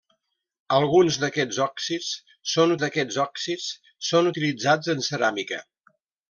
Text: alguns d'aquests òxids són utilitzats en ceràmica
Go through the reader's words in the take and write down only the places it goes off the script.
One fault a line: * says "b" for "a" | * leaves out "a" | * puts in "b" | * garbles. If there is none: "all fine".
* puts in "d'aquests òxids són"